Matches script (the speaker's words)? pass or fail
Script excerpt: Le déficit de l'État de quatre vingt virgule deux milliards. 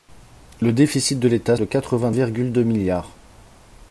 pass